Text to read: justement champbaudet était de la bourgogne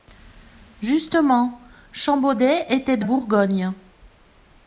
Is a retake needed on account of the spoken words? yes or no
yes